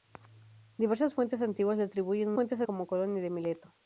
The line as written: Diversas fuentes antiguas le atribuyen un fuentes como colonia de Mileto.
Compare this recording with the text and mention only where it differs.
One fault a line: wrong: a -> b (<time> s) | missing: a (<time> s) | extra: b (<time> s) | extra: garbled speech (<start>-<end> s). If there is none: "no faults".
no faults